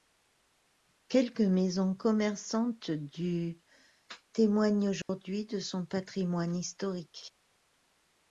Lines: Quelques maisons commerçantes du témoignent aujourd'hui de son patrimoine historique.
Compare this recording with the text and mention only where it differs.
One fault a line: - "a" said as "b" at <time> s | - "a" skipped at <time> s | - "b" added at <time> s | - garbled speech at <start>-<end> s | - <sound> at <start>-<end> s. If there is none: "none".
- dropout at 5.0-5.1 s